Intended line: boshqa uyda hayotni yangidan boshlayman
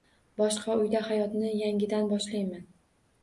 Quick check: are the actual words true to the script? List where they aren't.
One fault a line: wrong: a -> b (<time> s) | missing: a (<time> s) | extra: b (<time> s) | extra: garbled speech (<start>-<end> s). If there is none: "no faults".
no faults